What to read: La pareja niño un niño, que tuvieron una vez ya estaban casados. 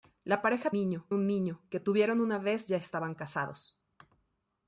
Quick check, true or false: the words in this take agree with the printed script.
true